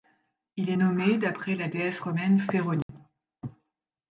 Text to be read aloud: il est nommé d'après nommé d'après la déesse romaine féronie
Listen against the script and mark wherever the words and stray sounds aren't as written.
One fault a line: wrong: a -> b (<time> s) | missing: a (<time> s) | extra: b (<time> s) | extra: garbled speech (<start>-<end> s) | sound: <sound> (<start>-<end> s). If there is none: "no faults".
missing: nommé d'après (1.6 s)
sound: dropout (2.8-2.9 s)